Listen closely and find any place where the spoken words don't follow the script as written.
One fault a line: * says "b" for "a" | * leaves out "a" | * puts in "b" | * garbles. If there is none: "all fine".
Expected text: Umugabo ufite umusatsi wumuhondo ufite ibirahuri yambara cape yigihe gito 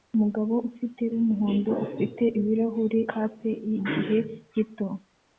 * leaves out "umusatsi"
* leaves out "yambara"